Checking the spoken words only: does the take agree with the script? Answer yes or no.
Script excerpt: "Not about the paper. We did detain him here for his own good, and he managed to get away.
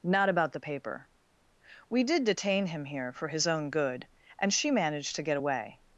no